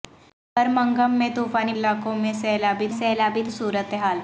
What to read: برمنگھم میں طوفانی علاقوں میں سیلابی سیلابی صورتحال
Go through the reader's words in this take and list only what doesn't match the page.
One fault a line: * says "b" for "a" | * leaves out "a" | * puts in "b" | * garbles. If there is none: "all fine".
all fine